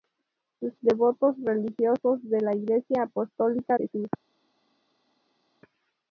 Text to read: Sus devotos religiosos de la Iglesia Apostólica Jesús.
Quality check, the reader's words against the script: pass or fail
pass